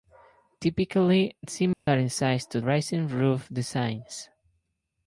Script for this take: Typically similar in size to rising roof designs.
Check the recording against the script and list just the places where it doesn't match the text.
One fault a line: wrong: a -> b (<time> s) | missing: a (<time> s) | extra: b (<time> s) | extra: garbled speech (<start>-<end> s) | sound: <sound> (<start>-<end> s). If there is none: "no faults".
sound: dropout (1.7-1.9 s)